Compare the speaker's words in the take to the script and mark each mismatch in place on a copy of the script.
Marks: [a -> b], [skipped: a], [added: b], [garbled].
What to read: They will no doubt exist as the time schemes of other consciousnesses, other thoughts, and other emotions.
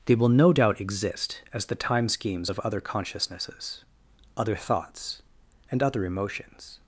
They will no doubt exist as the time schemes of other consciousnesses, other thoughts, and other emotions.